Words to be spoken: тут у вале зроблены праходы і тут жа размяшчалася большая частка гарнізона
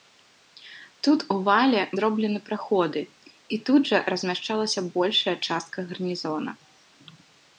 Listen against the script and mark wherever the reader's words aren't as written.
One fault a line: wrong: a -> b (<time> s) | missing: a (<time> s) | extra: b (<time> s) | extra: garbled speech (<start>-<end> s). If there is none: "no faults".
no faults